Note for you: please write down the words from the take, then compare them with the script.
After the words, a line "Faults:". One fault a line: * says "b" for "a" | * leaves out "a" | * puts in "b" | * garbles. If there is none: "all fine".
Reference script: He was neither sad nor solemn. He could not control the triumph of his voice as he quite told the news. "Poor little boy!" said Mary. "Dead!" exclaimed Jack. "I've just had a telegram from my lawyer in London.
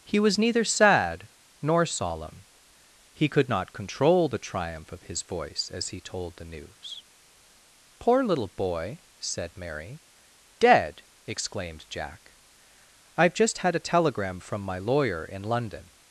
He was neither sad nor solemn. He could not control the triumph of his voice as he told the news. "Poor little boy!" said Mary. "Dead!" exclaimed Jack. "I've just had a telegram from my lawyer in London.
Faults:
* leaves out "quite"